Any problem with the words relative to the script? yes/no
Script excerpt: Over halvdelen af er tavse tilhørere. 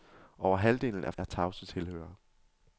no